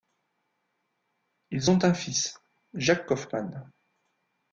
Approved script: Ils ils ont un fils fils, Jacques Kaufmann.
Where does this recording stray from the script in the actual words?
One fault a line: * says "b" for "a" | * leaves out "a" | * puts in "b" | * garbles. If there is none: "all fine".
* leaves out "ils"
* leaves out "fils"